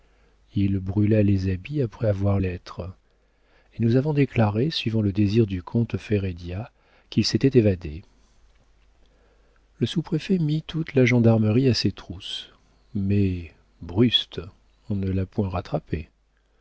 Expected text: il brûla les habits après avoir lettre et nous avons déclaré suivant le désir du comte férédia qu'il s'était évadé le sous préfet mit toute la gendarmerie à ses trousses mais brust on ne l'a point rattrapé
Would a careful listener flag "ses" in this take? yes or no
no